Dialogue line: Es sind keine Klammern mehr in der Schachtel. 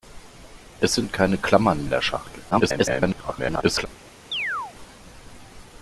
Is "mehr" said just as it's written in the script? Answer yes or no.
no